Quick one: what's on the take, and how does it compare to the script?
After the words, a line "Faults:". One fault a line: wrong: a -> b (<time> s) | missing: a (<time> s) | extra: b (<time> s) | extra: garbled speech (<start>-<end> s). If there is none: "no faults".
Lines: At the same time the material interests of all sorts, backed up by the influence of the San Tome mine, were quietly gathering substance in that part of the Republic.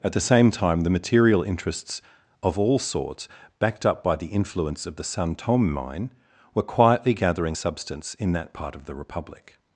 At the same time the material interests of all sorts, backed up by the influence of the San Tome mine, were quietly gathering substance in that part of the Republic.
Faults:
no faults